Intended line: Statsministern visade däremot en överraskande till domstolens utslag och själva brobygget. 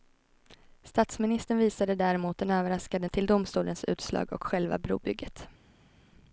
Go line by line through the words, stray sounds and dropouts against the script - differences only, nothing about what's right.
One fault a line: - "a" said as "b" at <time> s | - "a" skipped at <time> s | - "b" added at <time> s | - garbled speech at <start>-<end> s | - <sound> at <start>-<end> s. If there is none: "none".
none